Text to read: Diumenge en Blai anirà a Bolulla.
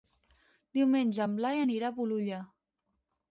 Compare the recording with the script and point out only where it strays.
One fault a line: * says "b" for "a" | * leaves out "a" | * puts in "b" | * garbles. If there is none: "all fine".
all fine